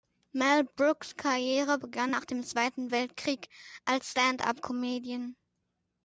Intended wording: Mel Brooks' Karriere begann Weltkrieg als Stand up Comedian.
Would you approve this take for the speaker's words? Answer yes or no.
no